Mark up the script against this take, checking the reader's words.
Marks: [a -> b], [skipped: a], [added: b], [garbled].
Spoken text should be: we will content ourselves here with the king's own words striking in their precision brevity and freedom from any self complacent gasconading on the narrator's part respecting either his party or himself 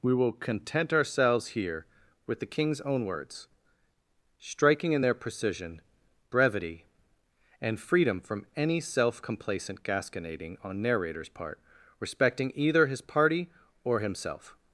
we will content ourselves here with the king's own words striking in their precision brevity and freedom from any self complacent gasconading on [skipped: the] narrator's part respecting either his party or himself